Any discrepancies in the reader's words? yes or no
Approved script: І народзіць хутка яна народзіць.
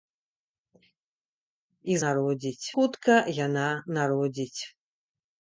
no